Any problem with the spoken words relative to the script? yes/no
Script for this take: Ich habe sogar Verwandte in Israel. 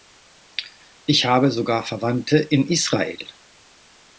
no